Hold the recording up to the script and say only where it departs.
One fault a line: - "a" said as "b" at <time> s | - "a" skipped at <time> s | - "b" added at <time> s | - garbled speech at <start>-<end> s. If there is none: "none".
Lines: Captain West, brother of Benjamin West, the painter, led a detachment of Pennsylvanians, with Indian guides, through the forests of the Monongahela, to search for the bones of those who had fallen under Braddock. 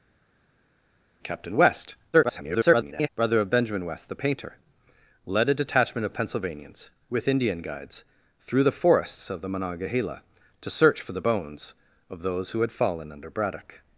- garbled speech at 2.1-3.1 s